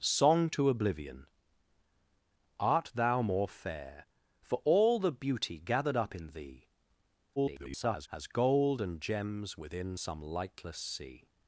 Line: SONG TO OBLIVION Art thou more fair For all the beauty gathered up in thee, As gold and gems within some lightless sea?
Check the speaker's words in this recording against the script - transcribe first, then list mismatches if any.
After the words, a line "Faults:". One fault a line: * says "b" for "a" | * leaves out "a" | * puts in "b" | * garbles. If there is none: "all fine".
SONG TO OBLIVION Art thou more fair For all the beauty gathered up in thee, [garbled] As gold and gems within some lightless sea?
Faults:
* garbles